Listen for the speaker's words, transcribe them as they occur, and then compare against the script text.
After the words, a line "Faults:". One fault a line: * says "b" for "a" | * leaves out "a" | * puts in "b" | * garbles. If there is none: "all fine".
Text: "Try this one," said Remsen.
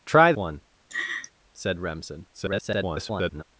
"Try one," said Remsen. [garbled]
Faults:
* leaves out "this"
* garbles